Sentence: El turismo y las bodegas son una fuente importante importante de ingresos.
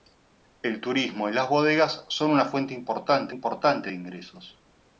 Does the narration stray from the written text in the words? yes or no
no